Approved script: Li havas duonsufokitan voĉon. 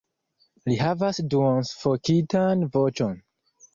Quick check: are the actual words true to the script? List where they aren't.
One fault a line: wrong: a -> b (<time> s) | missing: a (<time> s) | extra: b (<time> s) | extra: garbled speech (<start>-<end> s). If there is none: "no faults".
no faults